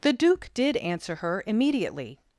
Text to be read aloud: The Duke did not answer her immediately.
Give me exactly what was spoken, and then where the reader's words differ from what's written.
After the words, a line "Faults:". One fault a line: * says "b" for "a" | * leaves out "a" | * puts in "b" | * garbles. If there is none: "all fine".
The Duke did answer her immediately.
Faults:
* leaves out "not"